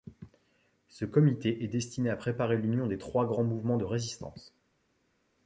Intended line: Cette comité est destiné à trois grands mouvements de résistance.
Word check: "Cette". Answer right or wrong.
wrong